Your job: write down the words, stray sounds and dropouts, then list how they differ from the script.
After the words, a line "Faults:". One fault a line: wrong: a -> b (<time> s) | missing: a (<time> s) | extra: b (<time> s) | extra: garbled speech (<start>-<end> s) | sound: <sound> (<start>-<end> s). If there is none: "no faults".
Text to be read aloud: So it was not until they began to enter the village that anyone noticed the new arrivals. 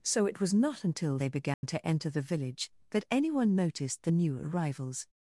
So it was not until they began to enter the village that anyone noticed the new arrivals.
Faults:
sound: dropout (1.5-1.6 s)